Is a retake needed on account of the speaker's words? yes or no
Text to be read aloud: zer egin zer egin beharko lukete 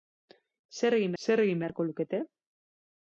no